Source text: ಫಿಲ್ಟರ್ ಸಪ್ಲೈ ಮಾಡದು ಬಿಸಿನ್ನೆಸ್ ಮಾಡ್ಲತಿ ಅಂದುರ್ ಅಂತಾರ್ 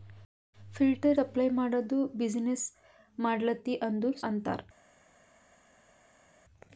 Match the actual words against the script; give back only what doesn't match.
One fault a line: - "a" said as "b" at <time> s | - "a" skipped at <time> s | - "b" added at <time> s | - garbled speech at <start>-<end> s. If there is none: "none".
none